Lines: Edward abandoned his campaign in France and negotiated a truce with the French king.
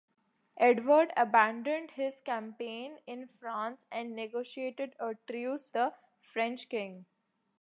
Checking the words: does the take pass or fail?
fail